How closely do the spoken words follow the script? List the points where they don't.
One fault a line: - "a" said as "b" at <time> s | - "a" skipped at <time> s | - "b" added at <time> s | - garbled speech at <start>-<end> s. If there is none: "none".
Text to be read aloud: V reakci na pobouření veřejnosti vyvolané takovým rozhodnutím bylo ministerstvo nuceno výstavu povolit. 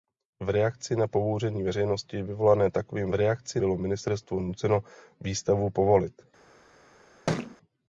- "rozhodnutím" said as "reakci" at 3.1 s